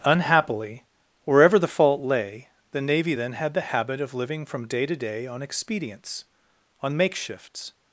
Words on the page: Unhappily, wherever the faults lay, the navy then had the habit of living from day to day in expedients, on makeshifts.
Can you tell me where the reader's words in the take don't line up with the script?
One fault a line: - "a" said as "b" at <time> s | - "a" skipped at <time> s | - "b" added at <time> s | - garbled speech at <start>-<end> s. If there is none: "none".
- "faults" said as "fault" at 1.7 s
- "in" said as "on" at 5.3 s